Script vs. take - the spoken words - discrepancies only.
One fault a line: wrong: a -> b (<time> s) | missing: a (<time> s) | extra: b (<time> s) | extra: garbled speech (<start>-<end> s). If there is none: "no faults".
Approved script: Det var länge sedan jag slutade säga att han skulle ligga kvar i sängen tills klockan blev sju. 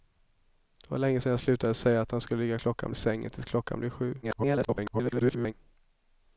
wrong: kvar -> klockan (2.6 s)
extra: garbled speech (4.2-5.5 s)